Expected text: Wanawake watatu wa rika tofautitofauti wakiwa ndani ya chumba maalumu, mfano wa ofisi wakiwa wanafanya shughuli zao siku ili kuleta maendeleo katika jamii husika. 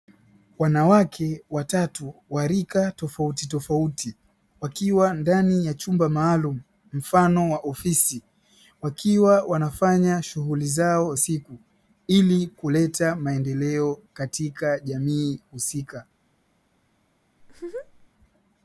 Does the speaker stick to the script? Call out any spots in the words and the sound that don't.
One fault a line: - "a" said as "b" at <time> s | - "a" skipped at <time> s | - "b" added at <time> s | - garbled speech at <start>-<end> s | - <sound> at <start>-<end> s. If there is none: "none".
- laugh at 17.4-18.1 s